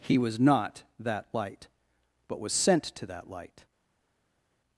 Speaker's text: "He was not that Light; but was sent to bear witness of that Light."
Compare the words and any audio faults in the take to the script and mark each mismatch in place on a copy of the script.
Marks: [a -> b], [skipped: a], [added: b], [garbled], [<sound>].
"He was not that Light; but was sent to [skipped: bear witness of] that Light."